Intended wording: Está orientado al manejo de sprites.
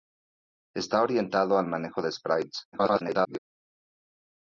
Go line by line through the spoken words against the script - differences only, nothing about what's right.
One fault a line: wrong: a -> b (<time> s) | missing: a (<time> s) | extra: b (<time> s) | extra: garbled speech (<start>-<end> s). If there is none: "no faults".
extra: garbled speech (2.7-3.4 s)